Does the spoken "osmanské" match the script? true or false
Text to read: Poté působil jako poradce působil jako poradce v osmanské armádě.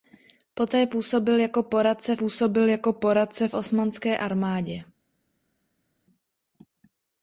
true